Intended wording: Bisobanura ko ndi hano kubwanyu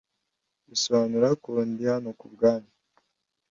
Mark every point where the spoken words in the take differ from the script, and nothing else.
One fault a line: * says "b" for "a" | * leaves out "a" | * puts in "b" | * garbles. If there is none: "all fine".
all fine